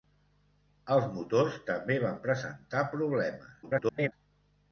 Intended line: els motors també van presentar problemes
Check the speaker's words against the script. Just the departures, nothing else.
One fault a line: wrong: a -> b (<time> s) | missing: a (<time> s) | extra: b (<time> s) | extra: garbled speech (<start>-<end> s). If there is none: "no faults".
extra: garbled speech (3.6-4.1 s)